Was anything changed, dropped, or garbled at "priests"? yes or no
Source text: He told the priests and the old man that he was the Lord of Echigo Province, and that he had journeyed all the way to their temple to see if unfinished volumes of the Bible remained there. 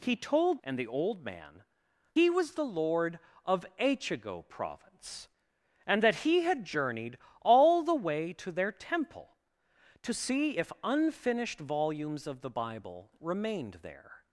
yes